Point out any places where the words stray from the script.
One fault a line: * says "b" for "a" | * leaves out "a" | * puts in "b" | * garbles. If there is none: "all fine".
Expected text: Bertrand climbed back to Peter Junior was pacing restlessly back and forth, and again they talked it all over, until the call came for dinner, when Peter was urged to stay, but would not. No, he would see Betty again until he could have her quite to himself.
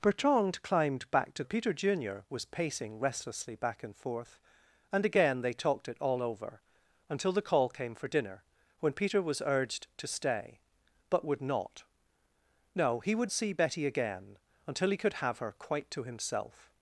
all fine